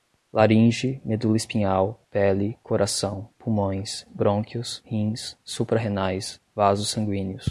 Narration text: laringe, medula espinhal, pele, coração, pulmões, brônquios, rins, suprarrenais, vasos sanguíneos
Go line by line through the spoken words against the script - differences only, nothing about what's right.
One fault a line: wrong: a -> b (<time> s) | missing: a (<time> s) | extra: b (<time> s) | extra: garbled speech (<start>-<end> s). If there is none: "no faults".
no faults